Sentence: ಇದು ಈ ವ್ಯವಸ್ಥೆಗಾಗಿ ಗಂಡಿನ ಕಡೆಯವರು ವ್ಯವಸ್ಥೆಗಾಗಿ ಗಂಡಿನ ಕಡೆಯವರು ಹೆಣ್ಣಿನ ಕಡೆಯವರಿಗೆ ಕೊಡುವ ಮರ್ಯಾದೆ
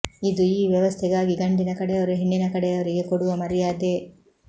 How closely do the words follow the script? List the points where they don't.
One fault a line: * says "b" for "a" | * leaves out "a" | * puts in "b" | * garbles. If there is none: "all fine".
* leaves out "ವ್ಯವಸ್ಥೆಗಾಗಿ ಗಂಡಿನ ಕಡೆಯವರು"